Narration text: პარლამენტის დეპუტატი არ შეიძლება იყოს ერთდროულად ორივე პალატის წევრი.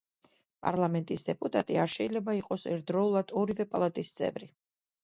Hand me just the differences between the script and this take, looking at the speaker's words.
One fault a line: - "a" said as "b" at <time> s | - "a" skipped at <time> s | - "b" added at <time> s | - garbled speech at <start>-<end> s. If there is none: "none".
none